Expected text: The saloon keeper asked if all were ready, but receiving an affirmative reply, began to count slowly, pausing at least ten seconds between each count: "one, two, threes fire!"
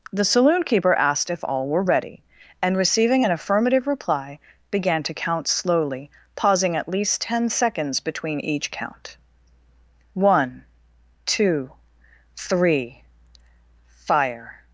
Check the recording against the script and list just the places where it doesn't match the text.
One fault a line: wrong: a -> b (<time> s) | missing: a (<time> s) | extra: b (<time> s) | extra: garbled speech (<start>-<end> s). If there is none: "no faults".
wrong: but -> and (2.6 s)
wrong: threes -> three (12.4 s)